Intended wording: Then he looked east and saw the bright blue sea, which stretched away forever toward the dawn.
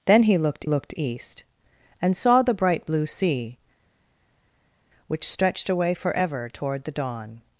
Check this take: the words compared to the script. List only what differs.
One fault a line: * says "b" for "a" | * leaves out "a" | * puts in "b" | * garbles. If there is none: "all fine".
* puts in "looked"